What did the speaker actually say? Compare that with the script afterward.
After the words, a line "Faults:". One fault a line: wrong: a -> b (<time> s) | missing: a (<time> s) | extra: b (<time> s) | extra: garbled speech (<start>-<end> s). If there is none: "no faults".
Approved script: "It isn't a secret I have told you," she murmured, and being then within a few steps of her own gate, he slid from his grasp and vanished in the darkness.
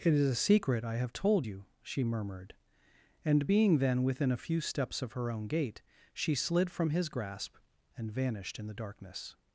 "It is a secret I have told you," she murmured, and being then within a few steps of her own gate, she slid from his grasp and vanished in the darkness.
Faults:
wrong: isn't -> is (0.1 s)
wrong: he -> she (6.1 s)